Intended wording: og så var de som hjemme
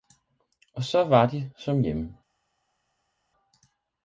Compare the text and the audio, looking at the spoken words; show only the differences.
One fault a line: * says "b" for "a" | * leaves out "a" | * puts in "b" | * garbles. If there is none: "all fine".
all fine